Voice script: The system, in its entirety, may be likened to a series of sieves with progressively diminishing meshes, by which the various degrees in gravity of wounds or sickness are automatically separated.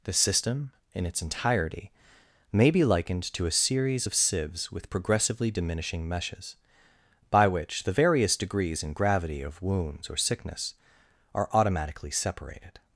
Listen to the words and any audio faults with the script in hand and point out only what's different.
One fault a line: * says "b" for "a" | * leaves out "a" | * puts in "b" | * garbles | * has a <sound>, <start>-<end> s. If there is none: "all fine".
all fine